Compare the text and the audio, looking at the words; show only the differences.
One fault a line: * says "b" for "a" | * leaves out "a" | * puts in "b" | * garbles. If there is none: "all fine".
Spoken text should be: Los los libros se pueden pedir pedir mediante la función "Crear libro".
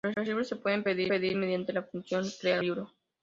all fine